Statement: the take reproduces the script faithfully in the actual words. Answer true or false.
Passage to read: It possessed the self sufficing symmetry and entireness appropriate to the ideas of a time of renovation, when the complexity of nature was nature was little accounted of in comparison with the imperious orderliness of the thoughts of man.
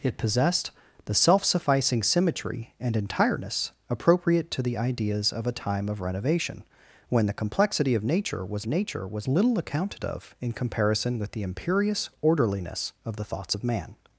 true